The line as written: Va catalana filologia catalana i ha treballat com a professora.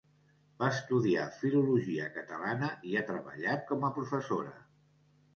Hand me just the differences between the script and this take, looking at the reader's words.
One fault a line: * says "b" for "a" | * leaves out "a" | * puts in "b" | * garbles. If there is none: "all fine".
* says "estudiar" for "catalana"